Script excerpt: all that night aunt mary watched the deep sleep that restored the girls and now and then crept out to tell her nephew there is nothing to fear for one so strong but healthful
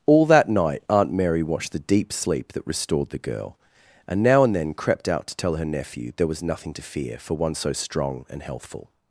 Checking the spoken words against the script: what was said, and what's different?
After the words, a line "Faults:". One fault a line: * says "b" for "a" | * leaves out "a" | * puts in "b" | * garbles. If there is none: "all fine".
all that night aunt mary watched the deep sleep that restored the girl and now and then crept out to tell her nephew there was nothing to fear for one so strong and healthful
Faults:
* says "girl" for "girls"
* says "was" for "is"
* says "and" for "but"